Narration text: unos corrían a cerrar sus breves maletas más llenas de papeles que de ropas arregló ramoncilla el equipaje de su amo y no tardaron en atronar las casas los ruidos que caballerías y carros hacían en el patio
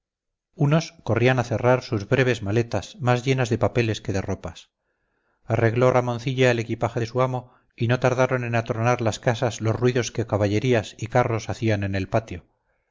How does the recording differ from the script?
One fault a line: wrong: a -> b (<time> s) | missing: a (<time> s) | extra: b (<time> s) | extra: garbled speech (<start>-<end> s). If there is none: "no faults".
no faults